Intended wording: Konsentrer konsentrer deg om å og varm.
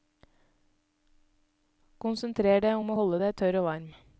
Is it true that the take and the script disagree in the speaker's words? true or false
true